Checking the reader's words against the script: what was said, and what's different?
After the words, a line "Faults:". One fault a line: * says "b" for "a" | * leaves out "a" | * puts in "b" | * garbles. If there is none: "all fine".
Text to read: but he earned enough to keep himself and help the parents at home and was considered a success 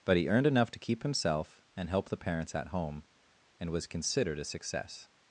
but he earned enough to keep himself and help the parents at home and was considered a success
Faults:
all fine